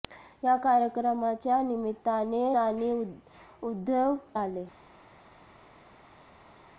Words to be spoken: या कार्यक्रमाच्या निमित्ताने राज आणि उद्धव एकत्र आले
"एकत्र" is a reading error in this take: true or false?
true